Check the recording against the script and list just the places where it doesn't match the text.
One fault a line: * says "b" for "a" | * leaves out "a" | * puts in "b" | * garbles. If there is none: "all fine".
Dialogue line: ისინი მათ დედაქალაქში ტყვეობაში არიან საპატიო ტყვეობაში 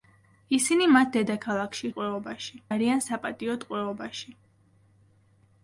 all fine